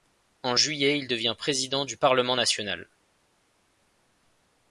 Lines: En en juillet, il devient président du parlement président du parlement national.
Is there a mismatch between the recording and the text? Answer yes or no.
yes